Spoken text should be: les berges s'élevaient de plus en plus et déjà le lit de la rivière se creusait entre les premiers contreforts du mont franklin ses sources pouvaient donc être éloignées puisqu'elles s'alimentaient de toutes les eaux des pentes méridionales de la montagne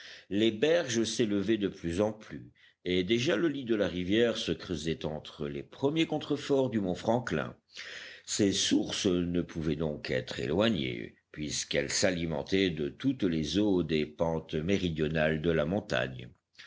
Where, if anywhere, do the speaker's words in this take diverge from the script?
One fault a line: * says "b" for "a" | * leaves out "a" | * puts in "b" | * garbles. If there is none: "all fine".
* puts in "ne"